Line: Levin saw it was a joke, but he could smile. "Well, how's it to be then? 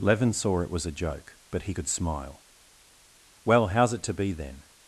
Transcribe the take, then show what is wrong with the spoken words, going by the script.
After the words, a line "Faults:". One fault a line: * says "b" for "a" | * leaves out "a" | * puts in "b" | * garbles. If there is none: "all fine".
Levin saw it was a joke, but he could smile. "Well, how's it to be then?
Faults:
all fine